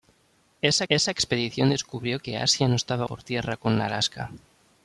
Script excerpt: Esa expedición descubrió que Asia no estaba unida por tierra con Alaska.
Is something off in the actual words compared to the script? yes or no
yes